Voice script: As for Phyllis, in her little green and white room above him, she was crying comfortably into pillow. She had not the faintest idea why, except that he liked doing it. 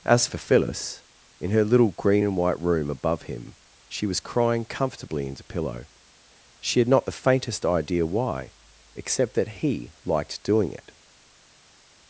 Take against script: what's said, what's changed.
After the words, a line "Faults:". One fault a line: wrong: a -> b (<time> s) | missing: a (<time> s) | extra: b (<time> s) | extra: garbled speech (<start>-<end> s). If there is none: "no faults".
As for Phyllis, in her little green and white room above him, she was crying comfortably into pillow. She had not the faintest idea why, except that he liked doing it.
Faults:
no faults